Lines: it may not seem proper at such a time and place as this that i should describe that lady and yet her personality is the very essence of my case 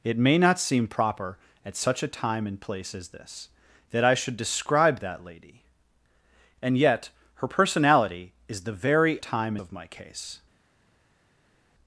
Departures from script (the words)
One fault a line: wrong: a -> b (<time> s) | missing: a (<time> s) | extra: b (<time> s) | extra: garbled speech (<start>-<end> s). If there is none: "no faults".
wrong: essence -> time (9.2 s)